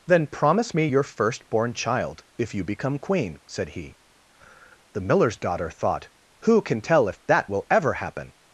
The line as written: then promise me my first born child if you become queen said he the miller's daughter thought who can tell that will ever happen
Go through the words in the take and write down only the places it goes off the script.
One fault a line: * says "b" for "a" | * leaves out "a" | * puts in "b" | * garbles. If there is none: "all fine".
* says "your" for "my"
* puts in "if"